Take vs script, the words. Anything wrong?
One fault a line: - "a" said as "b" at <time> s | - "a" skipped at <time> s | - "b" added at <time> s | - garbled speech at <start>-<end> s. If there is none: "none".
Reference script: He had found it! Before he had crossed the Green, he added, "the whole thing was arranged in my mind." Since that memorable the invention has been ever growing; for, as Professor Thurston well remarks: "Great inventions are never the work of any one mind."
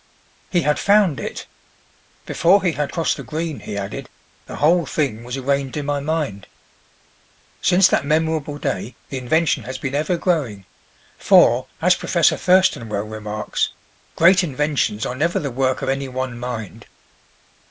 - "day" added at 8.6 s